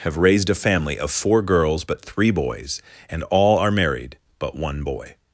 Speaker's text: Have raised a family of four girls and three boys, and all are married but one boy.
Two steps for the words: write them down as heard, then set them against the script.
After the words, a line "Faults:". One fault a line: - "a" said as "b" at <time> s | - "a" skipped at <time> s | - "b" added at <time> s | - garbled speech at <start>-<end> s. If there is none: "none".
Have raised a family of four girls but three boys, and all are married but one boy.
Faults:
- "and" said as "but" at 1.8 s